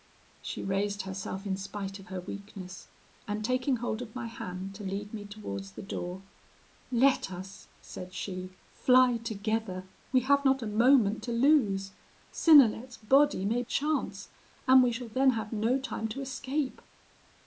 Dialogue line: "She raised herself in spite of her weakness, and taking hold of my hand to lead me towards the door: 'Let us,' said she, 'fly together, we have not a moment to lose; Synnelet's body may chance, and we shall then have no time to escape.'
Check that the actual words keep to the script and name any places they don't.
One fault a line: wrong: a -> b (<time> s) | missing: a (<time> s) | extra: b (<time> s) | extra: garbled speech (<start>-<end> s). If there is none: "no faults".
no faults